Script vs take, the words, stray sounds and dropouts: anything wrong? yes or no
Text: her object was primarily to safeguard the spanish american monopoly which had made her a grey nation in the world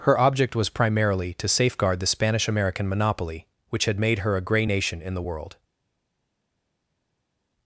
no